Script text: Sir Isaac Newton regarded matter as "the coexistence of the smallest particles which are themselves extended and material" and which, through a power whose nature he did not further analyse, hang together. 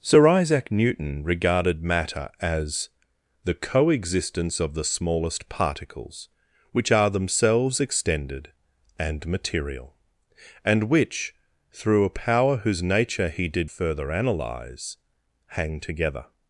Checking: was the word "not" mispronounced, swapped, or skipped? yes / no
yes